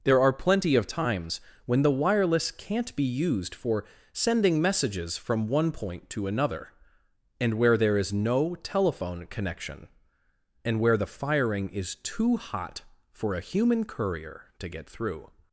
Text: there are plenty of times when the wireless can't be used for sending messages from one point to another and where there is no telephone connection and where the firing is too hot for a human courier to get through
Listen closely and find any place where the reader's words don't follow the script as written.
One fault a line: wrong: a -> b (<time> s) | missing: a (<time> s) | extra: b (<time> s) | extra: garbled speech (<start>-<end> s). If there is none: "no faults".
no faults